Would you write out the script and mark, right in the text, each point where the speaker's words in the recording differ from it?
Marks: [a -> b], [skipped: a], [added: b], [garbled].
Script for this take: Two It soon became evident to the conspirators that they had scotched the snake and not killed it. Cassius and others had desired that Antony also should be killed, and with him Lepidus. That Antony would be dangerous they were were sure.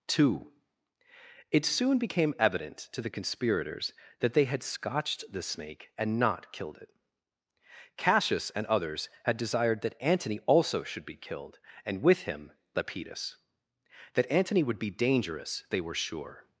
Two It soon became evident to the conspirators that they had scotched the snake and not killed it. Cassius and others had desired that Antony also should be killed, and with him Lepidus. That Antony would be dangerous they were [skipped: were] sure.